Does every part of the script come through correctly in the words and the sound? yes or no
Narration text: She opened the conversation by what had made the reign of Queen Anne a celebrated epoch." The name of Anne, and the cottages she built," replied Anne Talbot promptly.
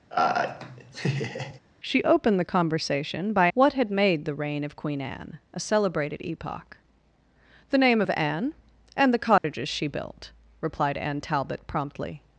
no